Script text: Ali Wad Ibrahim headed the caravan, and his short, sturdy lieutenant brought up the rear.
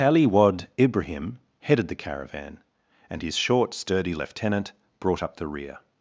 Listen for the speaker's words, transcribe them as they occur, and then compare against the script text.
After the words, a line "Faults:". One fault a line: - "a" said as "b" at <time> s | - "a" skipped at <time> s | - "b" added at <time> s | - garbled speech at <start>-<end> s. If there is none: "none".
Ali Wad Ibrahim headed the caravan, and his short, sturdy lieutenant brought up the rear.
Faults:
none